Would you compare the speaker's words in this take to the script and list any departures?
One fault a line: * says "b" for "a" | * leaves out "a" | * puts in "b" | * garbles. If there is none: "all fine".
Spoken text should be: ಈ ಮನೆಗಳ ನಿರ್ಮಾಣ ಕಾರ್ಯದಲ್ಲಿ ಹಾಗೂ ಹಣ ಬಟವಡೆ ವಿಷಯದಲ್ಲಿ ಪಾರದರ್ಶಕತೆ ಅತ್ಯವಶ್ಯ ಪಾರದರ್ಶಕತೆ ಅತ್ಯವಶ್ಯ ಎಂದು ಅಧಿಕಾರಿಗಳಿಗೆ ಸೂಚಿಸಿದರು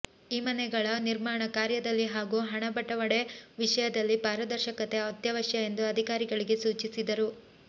* leaves out "ಪಾರದರ್ಶಕತೆ ಅತ್ಯವಶ್ಯ"